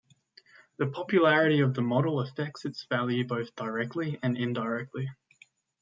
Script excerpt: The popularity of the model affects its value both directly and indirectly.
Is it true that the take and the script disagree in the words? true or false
false